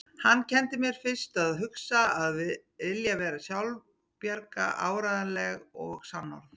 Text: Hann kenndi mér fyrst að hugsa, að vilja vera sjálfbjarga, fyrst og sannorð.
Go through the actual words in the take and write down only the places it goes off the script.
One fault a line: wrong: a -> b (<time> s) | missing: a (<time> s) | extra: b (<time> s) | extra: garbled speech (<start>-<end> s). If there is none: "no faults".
wrong: fyrst -> áreiðanleg (4.9 s)